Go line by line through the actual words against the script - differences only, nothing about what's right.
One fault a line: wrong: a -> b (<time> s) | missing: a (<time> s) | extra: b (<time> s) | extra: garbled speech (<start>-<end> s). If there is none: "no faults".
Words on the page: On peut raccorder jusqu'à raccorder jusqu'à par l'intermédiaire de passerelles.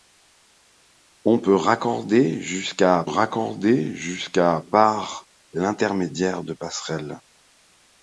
no faults